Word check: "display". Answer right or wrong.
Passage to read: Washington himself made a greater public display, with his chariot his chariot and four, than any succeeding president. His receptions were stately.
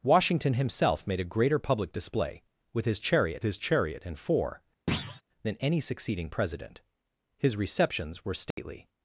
right